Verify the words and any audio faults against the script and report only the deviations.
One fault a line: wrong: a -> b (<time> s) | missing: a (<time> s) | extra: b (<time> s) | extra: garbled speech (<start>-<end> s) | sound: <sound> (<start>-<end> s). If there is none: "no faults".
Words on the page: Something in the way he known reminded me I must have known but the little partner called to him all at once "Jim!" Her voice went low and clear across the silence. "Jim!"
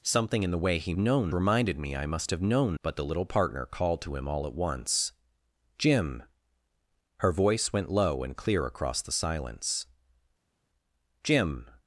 no faults